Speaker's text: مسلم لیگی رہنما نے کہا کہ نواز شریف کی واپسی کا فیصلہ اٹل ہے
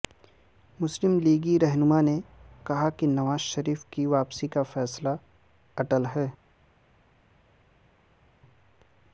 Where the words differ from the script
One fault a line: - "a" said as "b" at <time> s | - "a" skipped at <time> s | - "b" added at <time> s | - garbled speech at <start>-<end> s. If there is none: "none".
none